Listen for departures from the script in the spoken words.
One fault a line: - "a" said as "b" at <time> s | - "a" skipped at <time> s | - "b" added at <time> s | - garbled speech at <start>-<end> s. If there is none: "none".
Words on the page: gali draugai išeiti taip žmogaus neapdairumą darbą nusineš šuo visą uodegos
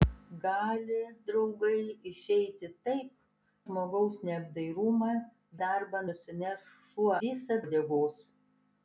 none